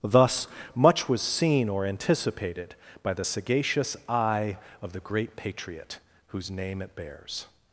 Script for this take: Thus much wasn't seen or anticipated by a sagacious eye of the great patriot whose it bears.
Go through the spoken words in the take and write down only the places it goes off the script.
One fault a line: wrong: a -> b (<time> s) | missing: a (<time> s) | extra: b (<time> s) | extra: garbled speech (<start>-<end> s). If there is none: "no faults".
wrong: wasn't -> was (1.1 s)
wrong: a -> the (3.1 s)
extra: name (6.5 s)